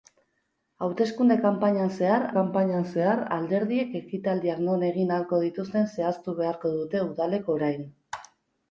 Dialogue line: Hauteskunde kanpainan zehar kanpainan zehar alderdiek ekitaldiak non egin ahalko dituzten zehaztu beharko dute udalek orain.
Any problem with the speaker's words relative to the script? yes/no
no